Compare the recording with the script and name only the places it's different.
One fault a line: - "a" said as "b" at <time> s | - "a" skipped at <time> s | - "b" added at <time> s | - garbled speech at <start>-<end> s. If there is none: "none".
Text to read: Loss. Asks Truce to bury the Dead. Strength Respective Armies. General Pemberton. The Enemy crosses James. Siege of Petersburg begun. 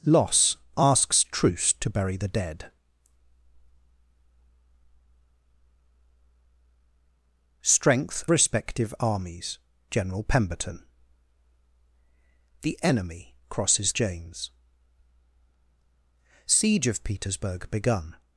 none